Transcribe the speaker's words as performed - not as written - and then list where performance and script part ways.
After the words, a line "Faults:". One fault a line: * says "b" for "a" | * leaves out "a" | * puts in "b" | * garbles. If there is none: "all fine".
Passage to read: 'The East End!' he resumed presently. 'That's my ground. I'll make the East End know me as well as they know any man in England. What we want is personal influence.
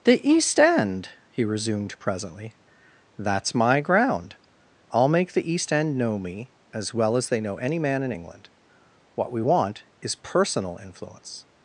'The East End!' he resumed presently. 'That's my ground. I'll make the East End know me as well as they know any man in England. What we want is personal influence.
Faults:
all fine